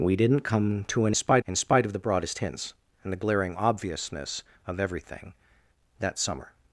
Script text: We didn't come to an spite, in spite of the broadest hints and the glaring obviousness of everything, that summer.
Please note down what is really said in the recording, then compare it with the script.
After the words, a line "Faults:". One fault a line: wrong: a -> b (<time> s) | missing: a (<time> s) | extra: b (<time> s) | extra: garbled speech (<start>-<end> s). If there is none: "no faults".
We didn't come to an spite, in spite of the broadest hints and the glaring obviousness of everything, that summer.
Faults:
no faults